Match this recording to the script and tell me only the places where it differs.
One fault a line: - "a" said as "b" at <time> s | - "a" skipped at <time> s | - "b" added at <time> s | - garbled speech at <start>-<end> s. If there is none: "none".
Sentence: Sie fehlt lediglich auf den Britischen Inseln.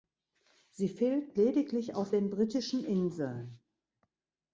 none